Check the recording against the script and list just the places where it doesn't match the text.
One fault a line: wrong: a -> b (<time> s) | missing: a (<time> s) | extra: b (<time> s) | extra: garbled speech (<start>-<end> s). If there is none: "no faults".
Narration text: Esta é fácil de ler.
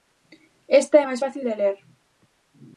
extra: máis (1.0 s)